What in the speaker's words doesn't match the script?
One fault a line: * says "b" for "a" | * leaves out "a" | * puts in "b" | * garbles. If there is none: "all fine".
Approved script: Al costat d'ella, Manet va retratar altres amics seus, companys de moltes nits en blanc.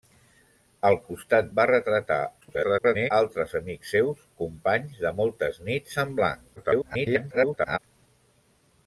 * leaves out "d'ella Manet"
* garbles
* garbles